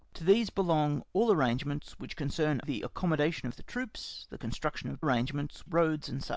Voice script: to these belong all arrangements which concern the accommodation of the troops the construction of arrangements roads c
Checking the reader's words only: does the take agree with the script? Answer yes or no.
yes